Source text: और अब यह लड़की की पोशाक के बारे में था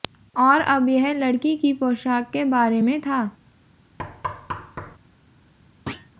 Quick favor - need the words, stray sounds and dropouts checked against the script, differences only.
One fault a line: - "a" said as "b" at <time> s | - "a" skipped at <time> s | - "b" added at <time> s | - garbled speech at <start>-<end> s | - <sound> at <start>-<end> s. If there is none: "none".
- thud at 4.0-5.0 s
- thud at 5.9-6.1 s